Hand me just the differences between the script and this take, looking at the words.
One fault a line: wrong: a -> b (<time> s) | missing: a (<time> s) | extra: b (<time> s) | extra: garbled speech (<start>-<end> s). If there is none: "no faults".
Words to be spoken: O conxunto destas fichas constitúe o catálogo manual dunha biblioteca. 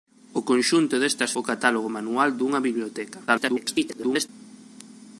missing: fichas constitúe (1.3 s)
extra: garbled speech (3.3-4.3 s)